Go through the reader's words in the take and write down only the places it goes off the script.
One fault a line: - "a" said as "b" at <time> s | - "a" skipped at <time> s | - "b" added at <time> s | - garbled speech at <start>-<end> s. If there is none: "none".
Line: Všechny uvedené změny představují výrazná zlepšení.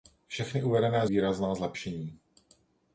- "změny představují" skipped at 1.1 s